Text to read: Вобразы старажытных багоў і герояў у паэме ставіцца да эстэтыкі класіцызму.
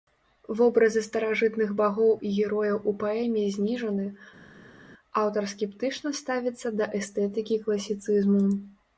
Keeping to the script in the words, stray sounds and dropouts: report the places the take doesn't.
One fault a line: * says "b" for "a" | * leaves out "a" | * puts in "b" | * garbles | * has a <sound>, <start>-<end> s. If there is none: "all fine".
* puts in "зніжаны аўтар скептычна"